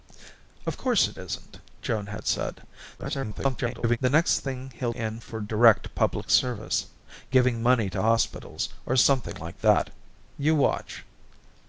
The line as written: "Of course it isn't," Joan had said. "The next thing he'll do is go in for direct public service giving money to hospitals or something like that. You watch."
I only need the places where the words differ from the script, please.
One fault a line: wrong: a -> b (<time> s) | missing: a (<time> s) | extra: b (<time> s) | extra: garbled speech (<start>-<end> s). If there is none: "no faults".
extra: garbled speech (3.0-4.0 s)
missing: do is go (4.9 s)